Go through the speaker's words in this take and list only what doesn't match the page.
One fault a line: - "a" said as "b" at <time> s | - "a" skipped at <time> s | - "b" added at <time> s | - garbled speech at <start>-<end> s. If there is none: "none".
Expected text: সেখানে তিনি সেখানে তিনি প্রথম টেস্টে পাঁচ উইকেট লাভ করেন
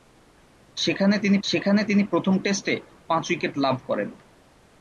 none